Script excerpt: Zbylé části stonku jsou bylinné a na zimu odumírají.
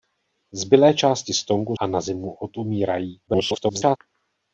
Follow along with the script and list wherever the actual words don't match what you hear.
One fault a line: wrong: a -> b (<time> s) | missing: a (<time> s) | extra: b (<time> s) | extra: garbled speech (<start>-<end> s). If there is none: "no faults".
missing: jsou bylinné (1.8 s)
extra: garbled speech (3.3-4.0 s)